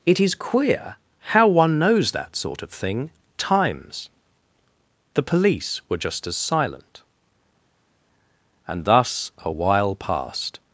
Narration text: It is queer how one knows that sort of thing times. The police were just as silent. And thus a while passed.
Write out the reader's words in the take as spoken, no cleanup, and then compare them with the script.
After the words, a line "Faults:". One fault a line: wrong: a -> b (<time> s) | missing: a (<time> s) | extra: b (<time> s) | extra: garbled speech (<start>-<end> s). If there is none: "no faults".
It is queer how one knows that sort of thing times. The police were just as silent. And thus a while passed.
Faults:
no faults